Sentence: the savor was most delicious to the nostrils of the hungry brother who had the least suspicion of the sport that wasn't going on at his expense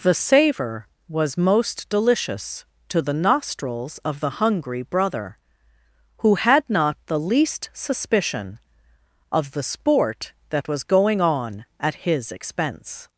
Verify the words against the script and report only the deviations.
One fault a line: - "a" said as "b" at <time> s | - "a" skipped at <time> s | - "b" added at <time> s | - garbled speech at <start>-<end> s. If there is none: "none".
- "not" added at 6.7 s
- "wasn't" said as "was" at 10.7 s